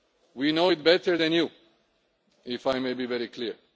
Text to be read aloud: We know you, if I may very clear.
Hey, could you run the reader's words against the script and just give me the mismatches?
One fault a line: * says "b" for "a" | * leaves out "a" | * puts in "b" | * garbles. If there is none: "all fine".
* puts in "it better than"
* puts in "be"